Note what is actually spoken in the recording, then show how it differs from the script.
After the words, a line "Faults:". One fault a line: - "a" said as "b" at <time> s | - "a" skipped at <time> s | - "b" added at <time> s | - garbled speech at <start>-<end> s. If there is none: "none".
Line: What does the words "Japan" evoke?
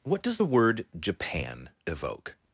What does the word "Japan" evoke?
Faults:
- "words" said as "word" at 0.4 s